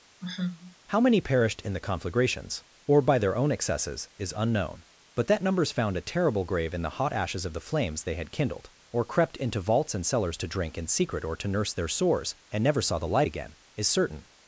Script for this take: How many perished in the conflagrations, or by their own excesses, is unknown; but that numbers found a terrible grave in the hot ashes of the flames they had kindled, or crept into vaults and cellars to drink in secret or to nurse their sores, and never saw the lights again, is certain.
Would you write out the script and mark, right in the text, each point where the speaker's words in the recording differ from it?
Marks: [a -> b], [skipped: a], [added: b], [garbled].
How many perished in the conflagrations, or by their own excesses, is unknown; but that numbers found a terrible grave in the hot ashes of the flames they had kindled, or crept into vaults and cellars to drink in secret or to nurse their sores, and never saw the [lights -> light] again, is certain.